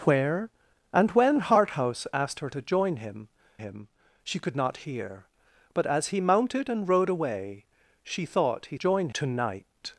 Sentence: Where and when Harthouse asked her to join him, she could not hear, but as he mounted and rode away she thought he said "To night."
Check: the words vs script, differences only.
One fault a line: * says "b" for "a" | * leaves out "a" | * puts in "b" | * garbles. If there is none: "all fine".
* puts in "him"
* says "join" for "said"